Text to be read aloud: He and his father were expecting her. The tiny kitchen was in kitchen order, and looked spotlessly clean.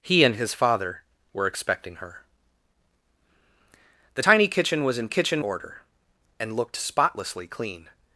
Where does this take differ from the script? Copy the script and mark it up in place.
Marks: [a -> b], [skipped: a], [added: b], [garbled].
He and his father were expecting her. The tiny kitchen was in kitchen order, and looked spotlessly clean.